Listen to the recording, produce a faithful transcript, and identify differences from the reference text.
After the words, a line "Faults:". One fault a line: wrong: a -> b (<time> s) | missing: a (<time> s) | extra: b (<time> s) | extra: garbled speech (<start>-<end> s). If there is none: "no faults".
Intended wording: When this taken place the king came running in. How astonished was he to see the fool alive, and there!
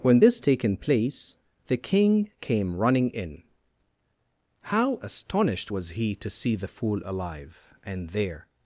When this taken place the king came running in. How astonished was he to see the fool alive, and there!
Faults:
no faults